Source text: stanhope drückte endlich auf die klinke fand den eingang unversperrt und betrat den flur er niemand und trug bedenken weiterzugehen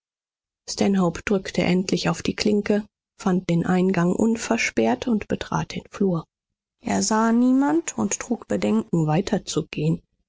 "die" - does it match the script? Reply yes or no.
yes